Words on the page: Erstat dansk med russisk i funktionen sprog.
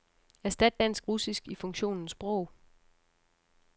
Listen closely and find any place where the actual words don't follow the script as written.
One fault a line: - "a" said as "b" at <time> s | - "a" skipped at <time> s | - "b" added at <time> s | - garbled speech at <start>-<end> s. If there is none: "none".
- "med" skipped at 1.1 s